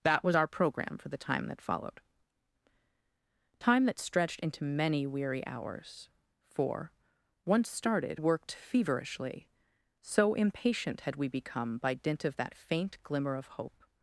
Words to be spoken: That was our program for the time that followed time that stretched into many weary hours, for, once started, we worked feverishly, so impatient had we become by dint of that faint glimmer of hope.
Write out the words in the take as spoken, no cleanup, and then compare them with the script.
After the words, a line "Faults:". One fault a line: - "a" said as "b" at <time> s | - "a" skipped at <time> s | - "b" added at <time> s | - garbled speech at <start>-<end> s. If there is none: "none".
That was our program for the time that followed time that stretched into many weary hours, for, once started, worked feverishly, so impatient had we become by dint of that faint glimmer of hope.
Faults:
- "we" skipped at 8.2 s